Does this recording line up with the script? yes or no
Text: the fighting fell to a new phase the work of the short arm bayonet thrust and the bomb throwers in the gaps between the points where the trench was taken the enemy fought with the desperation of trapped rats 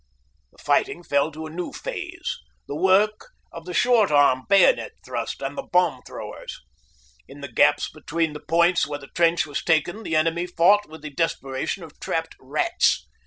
yes